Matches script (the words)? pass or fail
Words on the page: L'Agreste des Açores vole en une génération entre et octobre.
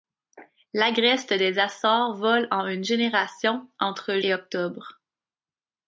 pass